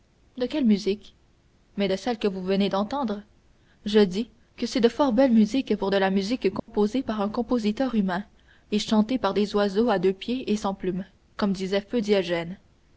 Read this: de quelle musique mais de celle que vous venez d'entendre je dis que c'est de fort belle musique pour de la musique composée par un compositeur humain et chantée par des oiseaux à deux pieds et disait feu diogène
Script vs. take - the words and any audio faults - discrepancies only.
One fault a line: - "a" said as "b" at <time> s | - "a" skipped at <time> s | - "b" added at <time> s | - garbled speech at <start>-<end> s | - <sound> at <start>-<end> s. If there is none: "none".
- dropout at 6.6-6.7 s
- "sans plumes comme" added at 10.6 s